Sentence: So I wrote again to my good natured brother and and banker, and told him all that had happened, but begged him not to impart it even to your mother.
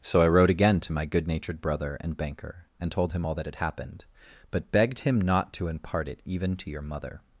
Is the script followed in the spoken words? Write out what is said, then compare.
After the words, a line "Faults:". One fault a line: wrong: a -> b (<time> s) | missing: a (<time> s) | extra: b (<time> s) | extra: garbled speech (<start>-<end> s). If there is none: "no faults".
So I wrote again to my good natured brother and banker, and told him all that had happened, but begged him not to impart it even to your mother.
Faults:
missing: and (2.2 s)